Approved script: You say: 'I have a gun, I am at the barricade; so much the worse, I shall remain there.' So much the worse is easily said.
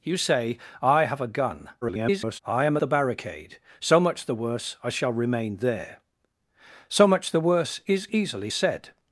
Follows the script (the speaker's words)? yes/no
no